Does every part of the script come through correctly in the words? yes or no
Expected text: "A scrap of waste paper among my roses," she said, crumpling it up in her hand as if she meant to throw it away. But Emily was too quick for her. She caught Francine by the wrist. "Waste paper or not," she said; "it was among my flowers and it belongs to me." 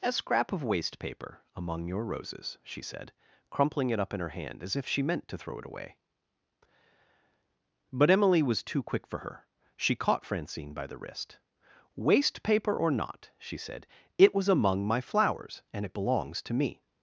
no